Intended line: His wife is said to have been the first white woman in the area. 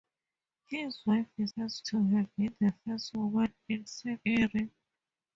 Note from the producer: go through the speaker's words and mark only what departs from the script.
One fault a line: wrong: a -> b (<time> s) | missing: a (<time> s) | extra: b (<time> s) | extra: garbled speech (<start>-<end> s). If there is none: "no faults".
wrong: said -> first (1.5 s)
missing: white (3.1 s)
wrong: the -> said (3.9 s)